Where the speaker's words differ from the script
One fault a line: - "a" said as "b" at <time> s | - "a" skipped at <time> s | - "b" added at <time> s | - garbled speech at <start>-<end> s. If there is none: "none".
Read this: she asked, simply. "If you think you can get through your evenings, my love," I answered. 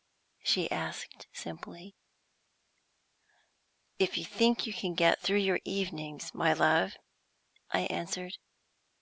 none